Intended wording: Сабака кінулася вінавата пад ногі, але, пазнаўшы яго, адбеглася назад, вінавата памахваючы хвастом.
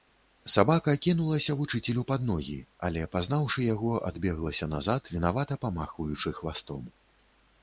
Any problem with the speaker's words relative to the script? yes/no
yes